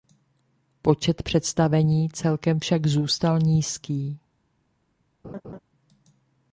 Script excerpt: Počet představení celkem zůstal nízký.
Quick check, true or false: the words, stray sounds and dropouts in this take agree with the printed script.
false